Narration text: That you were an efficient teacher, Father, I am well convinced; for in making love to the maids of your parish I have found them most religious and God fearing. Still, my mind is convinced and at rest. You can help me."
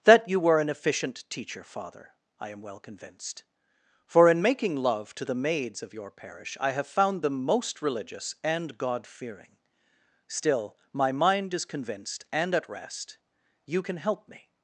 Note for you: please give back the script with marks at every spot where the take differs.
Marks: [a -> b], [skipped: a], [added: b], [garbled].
That you were an efficient teacher, Father, I am well convinced; for in making love to the maids of your parish I have found them most religious and God fearing. Still, my mind is convinced and at rest. You can help me."